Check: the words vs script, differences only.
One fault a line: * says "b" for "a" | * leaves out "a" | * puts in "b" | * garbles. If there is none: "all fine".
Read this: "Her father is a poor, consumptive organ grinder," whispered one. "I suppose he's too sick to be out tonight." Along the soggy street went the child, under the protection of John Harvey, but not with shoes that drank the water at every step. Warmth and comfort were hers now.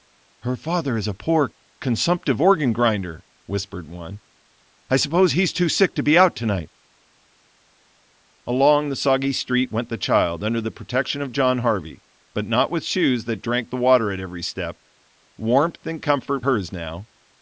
* leaves out "were"